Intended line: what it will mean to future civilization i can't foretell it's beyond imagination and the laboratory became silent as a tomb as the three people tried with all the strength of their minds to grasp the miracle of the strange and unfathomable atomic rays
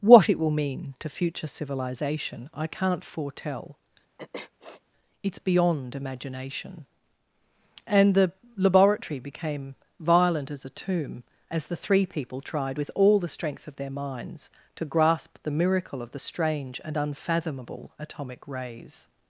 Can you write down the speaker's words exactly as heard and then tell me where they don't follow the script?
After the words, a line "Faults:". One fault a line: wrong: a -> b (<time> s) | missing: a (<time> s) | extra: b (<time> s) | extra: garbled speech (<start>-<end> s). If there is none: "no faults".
what it will mean to future civilization i can't foretell it's beyond imagination and the laboratory became violent as a tomb as the three people tried with all the strength of their minds to grasp the miracle of the strange and unfathomable atomic rays
Faults:
wrong: silent -> violent (10.0 s)